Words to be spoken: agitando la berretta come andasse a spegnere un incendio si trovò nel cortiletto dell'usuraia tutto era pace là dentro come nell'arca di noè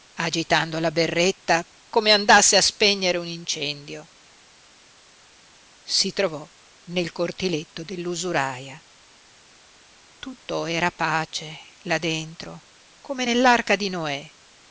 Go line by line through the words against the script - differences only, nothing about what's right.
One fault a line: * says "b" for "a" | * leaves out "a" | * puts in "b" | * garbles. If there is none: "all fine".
all fine